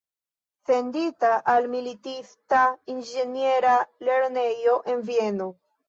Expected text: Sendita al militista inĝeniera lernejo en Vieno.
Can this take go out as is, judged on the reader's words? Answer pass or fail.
pass